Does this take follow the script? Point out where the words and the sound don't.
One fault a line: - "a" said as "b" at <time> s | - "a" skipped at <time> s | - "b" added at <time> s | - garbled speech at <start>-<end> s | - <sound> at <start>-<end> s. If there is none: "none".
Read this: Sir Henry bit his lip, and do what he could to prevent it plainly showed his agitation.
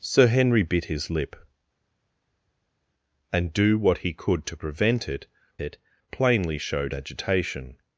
- "it" added at 5.6 s
- "his" skipped at 6.9 s